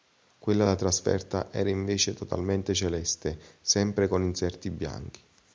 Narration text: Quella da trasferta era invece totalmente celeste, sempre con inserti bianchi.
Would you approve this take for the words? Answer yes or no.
yes